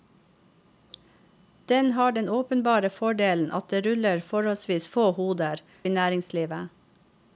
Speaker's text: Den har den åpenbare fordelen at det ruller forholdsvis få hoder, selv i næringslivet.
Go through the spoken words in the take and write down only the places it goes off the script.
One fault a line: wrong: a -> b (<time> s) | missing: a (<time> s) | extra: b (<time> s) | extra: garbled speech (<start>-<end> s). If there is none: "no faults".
missing: selv (5.6 s)